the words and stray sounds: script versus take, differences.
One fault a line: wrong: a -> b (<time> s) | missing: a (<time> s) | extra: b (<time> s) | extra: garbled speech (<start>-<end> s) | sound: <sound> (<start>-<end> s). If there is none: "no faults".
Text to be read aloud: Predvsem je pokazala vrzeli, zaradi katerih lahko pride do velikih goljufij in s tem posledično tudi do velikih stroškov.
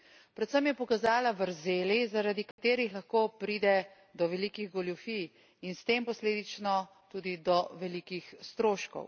sound: dropout (2.5-2.6 s)